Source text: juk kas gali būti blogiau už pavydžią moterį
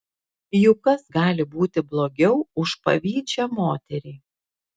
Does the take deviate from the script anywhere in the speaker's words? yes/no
no